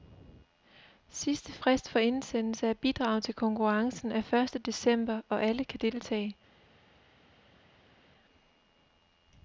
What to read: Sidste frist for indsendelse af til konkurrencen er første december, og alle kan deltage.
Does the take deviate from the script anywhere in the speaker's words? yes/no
yes